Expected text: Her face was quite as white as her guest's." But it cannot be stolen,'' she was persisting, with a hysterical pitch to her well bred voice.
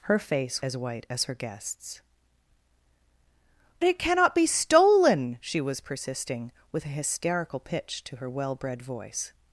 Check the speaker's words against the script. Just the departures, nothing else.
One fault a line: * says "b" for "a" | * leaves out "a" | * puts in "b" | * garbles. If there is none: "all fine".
* leaves out "was quite"
* leaves out "But"